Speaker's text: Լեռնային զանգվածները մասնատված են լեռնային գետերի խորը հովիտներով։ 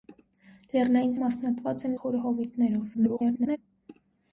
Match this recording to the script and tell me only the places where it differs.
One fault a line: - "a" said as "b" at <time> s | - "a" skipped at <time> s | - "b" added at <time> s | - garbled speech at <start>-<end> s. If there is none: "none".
- "զանգվածները" skipped at 1.1 s
- "լեռնային գետերի" skipped at 2.0 s
- garbled speech at 2.9-3.6 s